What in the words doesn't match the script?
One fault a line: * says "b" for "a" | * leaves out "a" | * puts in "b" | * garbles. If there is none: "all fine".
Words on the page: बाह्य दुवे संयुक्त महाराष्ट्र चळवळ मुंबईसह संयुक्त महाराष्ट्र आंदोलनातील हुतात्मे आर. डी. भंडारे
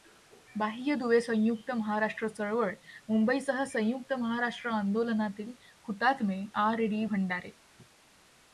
all fine